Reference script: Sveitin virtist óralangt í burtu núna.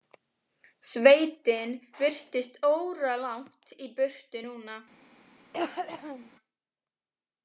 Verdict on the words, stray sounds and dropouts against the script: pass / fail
fail